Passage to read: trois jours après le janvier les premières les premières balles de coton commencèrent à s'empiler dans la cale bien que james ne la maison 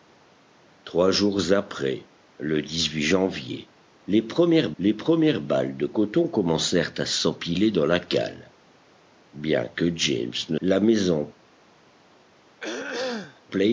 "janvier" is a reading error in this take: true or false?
false